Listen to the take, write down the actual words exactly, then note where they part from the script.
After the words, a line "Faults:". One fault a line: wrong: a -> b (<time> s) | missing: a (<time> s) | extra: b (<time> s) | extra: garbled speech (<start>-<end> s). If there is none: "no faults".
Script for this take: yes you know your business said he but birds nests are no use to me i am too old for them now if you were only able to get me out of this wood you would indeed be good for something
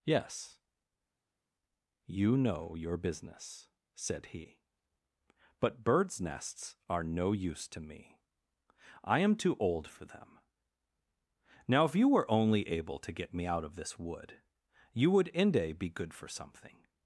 yes you know your business said he but birds nests are no use to me i am too old for them now if you were only able to get me out of this wood you would inde be good for something
Faults:
wrong: indeed -> inde (15.3 s)